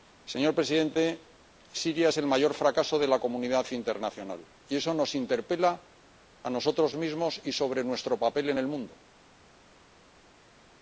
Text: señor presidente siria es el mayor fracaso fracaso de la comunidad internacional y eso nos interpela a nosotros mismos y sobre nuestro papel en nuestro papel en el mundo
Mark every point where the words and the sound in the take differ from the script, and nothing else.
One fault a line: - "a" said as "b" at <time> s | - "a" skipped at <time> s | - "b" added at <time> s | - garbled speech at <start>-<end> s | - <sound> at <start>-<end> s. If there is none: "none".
- "fracaso" skipped at 3.0 s
- "nuestro papel en" skipped at 8.6 s